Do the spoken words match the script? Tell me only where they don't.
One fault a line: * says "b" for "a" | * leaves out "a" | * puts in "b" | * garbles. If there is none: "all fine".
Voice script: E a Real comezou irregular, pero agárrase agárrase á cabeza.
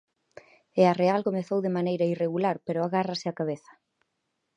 * puts in "de maneira"
* leaves out "agárrase"